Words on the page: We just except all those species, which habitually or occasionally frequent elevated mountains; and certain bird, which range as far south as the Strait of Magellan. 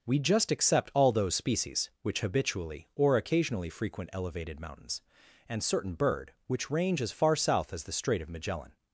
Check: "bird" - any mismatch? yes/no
no